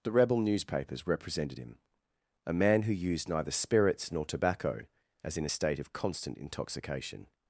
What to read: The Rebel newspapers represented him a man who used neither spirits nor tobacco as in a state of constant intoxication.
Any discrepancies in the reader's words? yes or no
no